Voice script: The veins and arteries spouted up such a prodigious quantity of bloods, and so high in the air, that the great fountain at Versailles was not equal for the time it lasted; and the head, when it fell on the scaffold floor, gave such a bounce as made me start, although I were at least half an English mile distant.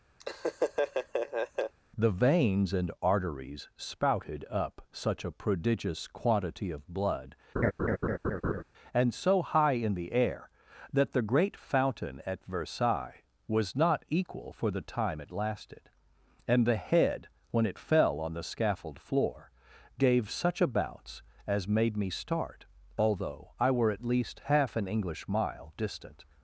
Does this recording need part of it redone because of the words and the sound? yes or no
yes